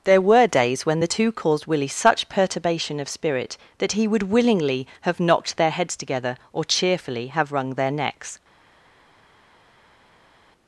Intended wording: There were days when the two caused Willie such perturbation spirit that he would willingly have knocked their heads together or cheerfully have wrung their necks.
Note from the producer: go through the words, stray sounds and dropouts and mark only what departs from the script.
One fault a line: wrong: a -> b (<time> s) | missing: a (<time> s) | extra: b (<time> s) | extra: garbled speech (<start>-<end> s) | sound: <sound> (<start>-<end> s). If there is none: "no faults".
extra: of (3.0 s)